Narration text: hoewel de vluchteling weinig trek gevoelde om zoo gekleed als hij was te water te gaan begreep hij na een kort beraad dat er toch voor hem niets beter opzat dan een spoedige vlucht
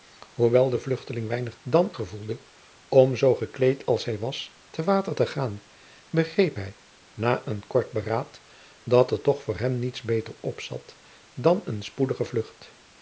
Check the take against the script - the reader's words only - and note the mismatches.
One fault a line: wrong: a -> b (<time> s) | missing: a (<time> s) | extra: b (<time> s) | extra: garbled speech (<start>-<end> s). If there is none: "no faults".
wrong: trek -> dan (1.6 s)